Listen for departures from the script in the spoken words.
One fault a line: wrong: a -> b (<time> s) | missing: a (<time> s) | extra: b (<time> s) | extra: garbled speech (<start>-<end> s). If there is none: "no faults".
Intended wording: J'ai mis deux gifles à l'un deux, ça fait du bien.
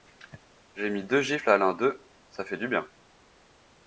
no faults